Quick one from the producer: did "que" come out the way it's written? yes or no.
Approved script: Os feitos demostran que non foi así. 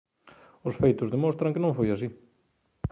yes